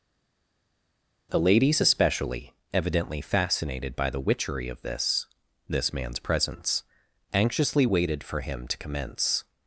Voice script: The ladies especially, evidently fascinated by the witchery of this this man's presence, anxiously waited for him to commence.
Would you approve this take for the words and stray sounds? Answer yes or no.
yes